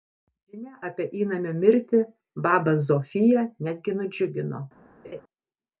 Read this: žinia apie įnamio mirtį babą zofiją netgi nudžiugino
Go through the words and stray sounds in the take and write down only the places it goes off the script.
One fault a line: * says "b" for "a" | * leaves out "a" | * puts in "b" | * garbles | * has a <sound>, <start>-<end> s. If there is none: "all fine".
* has a laugh, 5.0-5.2 s